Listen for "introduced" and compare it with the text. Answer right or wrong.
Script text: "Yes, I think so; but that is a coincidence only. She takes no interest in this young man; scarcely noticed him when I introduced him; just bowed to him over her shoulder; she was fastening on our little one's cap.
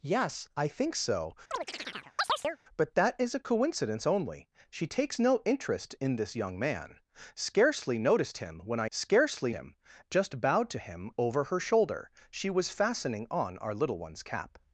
wrong